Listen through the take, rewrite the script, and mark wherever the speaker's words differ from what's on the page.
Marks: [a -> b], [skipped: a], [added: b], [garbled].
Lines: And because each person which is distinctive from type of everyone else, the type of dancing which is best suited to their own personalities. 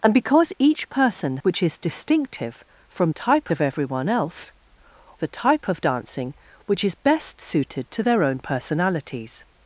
And because each person which is distinctive from type of everyone else, the type of dancing which is best suited to their own personalities.